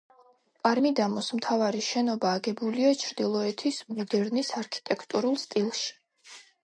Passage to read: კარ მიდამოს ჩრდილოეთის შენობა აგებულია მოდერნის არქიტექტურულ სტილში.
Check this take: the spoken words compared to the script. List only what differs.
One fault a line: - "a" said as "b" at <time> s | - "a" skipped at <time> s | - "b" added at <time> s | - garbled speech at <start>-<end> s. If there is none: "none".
- "ჩრდილოეთის" said as "მთავარი" at 1.4 s
- "ჩრდილოეთის" added at 3.0 s